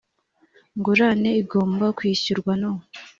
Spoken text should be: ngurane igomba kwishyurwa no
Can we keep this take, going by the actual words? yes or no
yes